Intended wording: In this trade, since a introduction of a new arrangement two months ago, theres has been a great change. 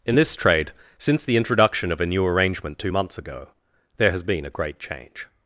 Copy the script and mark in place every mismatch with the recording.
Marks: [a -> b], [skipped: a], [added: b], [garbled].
In this trade, since [a -> the] introduction of a new arrangement two months ago, [theres -> there] has been a great change.